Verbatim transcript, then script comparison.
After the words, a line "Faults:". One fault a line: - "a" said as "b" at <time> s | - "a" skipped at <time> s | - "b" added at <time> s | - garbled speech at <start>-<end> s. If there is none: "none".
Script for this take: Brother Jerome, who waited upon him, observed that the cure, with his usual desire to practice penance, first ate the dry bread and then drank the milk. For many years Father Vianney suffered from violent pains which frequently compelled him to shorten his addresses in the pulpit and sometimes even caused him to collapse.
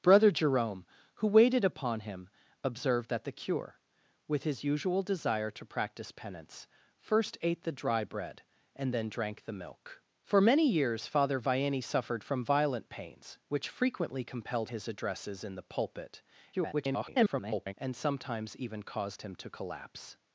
Brother Jerome, who waited upon him, observed that the cure, with his usual desire to practice penance, first ate the dry bread and then drank the milk. For many years Father Vianney suffered from violent pains which frequently compelled his addresses in the pulpit [garbled] and sometimes even caused him to collapse.
Faults:
- "him to shorten" skipped at 14.7 s
- garbled speech at 16.5-17.7 s